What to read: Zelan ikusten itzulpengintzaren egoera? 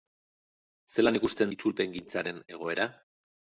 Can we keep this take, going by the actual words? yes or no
yes